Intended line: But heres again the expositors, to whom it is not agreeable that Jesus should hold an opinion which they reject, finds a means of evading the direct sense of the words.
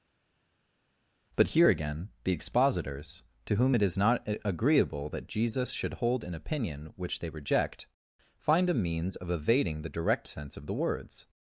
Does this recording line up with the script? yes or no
no